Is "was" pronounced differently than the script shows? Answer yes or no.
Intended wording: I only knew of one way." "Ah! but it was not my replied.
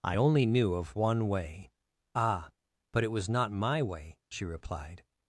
no